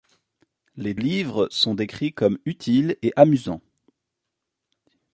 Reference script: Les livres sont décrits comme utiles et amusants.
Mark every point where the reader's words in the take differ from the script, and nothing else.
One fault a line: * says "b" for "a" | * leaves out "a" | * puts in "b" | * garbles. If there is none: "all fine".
all fine